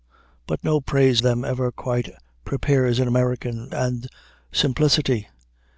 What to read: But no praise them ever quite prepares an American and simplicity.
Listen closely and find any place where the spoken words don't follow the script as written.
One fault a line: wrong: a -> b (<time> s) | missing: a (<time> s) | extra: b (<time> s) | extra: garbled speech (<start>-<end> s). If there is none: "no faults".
no faults